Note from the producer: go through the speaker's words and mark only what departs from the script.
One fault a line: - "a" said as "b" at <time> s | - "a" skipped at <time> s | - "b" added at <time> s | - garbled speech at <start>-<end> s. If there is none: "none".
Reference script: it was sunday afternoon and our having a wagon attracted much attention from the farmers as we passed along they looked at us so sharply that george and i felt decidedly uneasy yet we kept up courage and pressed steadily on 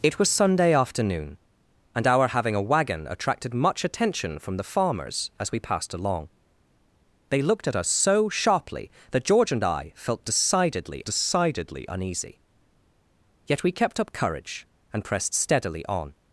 - "decidedly" added at 11.0 s